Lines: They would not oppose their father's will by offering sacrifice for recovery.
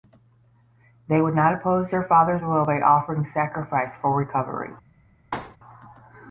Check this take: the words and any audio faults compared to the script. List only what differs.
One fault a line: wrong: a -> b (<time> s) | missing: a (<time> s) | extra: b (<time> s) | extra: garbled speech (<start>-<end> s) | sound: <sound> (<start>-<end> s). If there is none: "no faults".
sound: thud (5.3-5.6 s)